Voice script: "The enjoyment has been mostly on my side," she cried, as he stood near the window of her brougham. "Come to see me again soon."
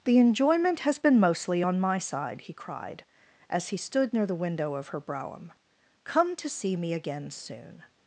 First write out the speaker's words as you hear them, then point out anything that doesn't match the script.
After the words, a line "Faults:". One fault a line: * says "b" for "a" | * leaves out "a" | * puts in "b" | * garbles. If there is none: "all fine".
"The enjoyment has been mostly on my side," he cried, as he stood near the window of her brougham. "Come to see me again soon."
Faults:
* says "he" for "she"